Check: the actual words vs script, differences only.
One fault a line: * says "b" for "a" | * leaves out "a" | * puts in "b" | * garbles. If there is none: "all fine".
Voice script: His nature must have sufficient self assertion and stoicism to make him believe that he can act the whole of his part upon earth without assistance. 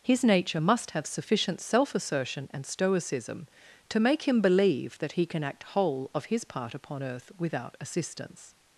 * leaves out "the"